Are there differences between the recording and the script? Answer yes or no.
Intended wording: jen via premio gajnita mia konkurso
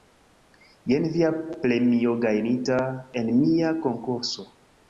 yes